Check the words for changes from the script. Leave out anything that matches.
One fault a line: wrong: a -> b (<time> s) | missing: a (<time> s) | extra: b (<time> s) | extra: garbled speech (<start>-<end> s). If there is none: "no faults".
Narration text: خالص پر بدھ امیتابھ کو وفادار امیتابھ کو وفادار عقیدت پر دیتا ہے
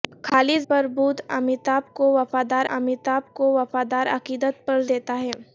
no faults